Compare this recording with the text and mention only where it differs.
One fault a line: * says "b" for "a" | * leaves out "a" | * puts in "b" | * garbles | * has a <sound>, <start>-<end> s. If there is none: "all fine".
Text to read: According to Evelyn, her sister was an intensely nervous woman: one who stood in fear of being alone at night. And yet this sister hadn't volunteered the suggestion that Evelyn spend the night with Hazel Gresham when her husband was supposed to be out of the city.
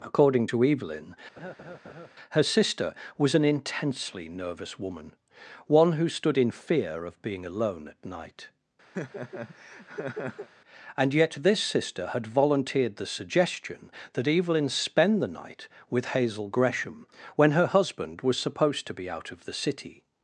* has a laugh, 1.4-2.1 s
* has a laugh, 8.9-10.5 s
* says "had" for "hadn't"